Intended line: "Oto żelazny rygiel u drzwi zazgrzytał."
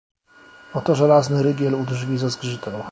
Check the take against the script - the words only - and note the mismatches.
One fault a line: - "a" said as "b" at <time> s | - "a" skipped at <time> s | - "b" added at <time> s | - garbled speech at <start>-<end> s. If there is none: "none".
none